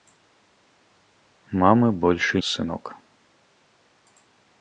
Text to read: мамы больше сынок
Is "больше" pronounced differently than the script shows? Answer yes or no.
no